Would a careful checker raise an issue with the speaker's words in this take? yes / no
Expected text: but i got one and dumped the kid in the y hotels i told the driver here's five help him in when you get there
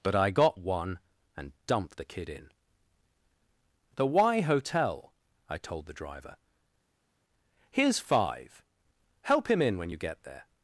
yes